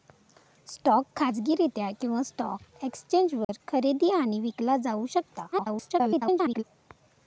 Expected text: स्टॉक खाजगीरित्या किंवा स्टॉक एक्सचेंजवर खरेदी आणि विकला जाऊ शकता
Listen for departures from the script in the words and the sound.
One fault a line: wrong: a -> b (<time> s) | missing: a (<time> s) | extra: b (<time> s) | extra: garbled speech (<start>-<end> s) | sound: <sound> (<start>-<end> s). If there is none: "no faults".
sound: dropout (3.4-3.5 s)
extra: garbled speech (5.5-6.6 s)